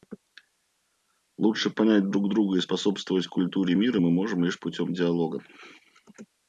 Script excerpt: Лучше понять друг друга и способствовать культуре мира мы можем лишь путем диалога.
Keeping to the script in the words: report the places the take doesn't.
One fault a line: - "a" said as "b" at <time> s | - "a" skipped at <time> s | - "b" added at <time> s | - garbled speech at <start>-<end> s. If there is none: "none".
none